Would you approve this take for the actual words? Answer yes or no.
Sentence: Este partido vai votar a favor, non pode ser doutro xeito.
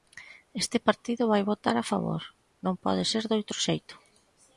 yes